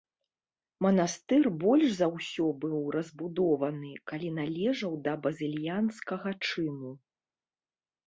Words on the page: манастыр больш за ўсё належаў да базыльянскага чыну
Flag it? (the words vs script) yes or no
yes